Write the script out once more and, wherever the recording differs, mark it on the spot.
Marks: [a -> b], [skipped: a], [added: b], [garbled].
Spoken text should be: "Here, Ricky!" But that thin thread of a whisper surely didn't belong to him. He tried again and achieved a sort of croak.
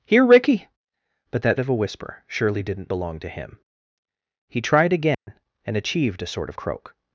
"Here, Ricky!" But that [skipped: thin thread] of a whisper surely didn't belong to him. He tried again and achieved a sort of croak.